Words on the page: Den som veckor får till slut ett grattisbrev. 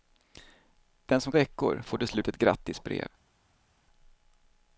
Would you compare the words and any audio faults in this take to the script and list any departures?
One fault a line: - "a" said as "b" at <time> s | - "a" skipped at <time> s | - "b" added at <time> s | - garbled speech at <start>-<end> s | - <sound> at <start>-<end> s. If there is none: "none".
none